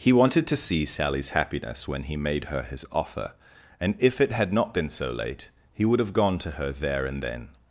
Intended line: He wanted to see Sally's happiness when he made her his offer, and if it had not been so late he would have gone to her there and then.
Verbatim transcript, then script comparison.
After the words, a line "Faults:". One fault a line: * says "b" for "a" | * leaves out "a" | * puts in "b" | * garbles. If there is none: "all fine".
He wanted to see Sally's happiness when he made her his offer, and if it had not been so late he would have gone to her there and then.
Faults:
all fine